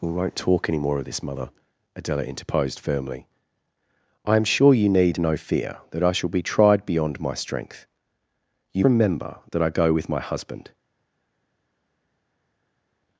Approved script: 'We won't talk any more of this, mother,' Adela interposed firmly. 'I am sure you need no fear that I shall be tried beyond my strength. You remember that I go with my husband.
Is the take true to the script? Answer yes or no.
yes